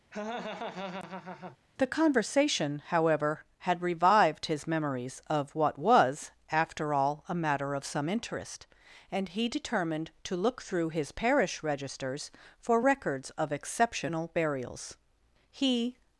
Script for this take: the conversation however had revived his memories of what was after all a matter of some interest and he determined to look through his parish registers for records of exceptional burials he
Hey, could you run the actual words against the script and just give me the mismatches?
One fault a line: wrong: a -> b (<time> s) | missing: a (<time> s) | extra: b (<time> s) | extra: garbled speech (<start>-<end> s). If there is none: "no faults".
no faults